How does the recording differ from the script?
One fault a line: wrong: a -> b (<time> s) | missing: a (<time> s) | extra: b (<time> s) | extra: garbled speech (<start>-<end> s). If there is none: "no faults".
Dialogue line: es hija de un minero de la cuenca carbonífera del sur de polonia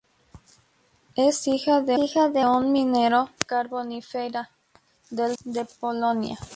wrong: un minero -> hija (2.0 s)
wrong: la cuenca -> un minero (2.4 s)
missing: sur (5.4 s)